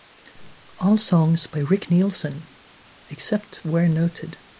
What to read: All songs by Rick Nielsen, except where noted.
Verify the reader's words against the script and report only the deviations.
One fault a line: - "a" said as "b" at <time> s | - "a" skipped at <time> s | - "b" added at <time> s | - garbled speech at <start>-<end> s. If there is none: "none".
none